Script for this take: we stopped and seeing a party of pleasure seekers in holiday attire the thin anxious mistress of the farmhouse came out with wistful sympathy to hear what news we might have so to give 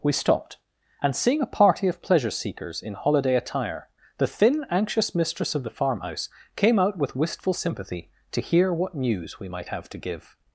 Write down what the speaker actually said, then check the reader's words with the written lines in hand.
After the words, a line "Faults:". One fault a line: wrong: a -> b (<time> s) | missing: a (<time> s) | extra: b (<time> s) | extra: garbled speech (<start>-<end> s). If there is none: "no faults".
we stopped and seeing a party of pleasure seekers in holiday attire the thin anxious mistress of the farmhouse came out with wistful sympathy to hear what news we might have to give
Faults:
missing: so (9.9 s)